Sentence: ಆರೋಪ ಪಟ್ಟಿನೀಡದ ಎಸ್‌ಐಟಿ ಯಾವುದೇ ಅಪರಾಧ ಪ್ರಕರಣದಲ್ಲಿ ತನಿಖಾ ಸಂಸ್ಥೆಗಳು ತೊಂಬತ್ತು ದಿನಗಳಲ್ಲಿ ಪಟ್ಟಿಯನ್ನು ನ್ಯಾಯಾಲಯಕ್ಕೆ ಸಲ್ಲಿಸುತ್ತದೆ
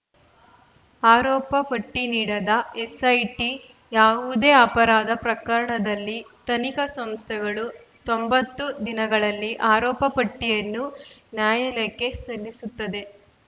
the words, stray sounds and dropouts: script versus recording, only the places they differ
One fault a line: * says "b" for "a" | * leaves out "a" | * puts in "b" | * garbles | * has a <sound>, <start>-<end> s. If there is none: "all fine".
* puts in "ಆರೋಪ"